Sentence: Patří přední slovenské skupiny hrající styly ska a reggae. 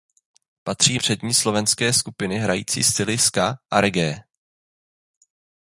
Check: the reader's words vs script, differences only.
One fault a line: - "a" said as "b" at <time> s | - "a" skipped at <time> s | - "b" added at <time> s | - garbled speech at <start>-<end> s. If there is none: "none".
none